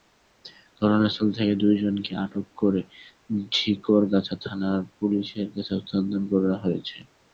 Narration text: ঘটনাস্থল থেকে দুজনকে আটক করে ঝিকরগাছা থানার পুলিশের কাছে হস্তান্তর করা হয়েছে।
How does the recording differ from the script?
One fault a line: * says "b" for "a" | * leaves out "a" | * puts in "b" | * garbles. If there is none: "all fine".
all fine